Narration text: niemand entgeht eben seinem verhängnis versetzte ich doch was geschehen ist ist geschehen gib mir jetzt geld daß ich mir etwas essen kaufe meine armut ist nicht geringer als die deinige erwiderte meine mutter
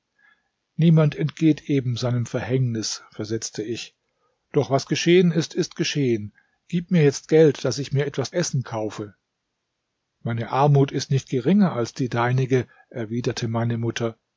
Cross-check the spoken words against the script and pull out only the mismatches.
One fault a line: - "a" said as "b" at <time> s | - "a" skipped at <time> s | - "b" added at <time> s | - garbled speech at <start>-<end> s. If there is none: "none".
none